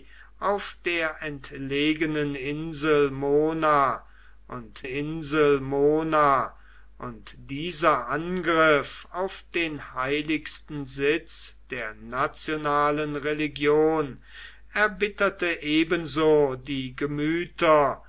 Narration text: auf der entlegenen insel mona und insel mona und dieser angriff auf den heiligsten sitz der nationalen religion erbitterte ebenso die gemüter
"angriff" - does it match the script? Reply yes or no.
yes